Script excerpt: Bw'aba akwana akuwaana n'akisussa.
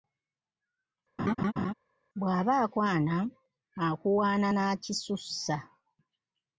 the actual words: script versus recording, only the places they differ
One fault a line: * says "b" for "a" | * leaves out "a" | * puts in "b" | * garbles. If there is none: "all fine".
all fine